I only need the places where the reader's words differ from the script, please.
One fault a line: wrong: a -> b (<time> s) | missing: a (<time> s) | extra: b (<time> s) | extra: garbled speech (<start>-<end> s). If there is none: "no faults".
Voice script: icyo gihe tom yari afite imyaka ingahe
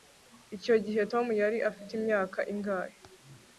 no faults